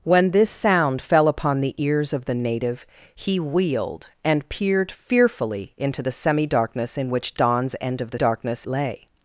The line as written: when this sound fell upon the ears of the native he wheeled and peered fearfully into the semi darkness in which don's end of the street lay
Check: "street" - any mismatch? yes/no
yes